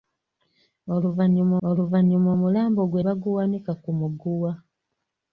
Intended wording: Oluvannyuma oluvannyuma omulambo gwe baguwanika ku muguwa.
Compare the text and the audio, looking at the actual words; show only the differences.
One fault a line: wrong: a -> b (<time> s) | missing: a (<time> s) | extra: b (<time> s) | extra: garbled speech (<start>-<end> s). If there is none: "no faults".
no faults